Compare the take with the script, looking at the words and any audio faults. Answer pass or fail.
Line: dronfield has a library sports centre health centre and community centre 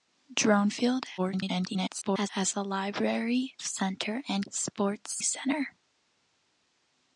fail